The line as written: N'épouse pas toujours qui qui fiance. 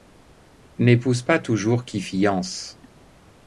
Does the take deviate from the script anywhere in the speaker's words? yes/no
yes